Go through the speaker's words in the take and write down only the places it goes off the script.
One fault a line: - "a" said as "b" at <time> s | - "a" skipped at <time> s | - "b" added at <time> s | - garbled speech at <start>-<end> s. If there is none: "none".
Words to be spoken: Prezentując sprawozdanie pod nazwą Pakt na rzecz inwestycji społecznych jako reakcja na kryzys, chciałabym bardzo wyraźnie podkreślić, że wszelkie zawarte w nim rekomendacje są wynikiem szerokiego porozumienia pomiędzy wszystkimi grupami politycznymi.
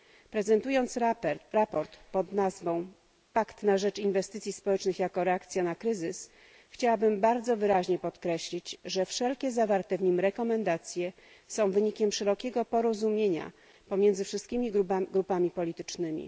none